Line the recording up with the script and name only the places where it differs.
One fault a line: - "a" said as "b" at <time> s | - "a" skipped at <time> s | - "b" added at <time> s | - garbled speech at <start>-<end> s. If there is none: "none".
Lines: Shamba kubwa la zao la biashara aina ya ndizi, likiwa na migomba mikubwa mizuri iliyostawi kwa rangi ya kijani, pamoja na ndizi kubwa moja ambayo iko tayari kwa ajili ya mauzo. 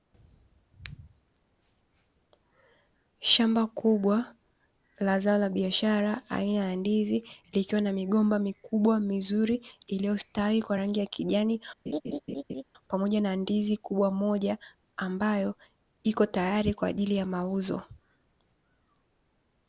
none